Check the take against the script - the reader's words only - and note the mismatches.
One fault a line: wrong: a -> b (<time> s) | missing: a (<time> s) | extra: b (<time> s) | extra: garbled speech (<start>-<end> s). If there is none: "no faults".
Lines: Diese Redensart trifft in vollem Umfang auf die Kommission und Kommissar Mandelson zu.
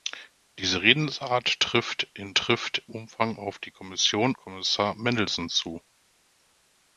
wrong: vollem -> trifft (2.3 s)
missing: und (4.3 s)